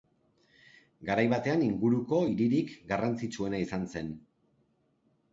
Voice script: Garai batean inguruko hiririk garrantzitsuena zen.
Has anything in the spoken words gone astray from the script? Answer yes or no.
yes